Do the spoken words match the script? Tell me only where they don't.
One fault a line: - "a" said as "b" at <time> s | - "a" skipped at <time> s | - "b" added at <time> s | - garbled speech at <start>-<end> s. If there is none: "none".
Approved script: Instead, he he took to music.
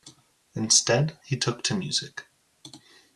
- "he" skipped at 1.4 s